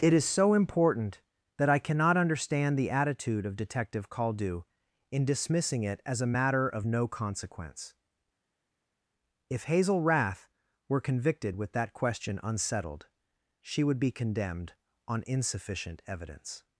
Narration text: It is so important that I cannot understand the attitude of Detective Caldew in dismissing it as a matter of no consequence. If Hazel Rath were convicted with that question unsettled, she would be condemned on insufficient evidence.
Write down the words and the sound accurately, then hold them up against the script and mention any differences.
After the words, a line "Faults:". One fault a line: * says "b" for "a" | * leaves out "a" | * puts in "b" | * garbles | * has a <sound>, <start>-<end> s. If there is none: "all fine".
It is so important that I cannot understand the attitude of Detective Caldew in dismissing it as a matter of no consequence. If Hazel Rath were convicted with that question unsettled, she would be condemned on insufficient evidence.
Faults:
all fine